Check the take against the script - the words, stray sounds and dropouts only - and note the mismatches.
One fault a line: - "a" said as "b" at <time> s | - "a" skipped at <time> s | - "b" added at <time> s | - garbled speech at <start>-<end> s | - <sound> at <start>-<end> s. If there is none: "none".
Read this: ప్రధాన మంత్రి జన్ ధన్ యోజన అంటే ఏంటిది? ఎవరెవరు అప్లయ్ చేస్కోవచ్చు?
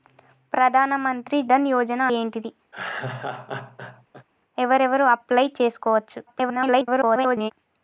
- "జన్" skipped at 1.4 s
- "అంటే" skipped at 2.0 s
- laugh at 2.7-4.3 s
- garbled speech at 6.3-7.5 s